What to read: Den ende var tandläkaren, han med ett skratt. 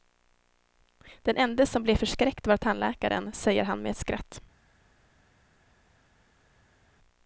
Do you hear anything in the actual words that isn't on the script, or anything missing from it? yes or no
yes